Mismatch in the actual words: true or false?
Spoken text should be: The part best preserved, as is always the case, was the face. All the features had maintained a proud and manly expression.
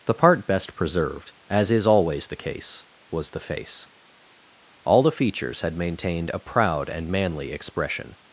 false